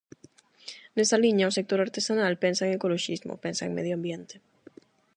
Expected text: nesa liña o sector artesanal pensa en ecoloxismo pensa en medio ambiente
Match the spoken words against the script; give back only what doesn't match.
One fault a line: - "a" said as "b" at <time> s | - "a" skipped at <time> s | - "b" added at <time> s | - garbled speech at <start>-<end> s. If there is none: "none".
none